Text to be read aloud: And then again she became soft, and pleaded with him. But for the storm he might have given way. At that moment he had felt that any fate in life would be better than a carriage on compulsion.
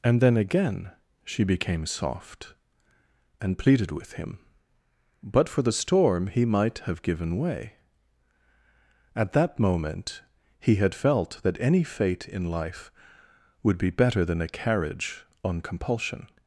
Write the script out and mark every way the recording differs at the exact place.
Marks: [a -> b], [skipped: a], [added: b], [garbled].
And then again she became soft, and pleaded with him. But for the storm he might have given way. At that moment he had felt that any fate in life would be better than a carriage on compulsion.